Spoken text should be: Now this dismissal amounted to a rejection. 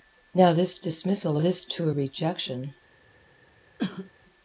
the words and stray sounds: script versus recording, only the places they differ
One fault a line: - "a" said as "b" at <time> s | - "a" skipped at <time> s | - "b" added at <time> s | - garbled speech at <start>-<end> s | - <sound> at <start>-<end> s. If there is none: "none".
- "amounted" said as "this" at 1.4 s
- cough at 3.8-4.1 s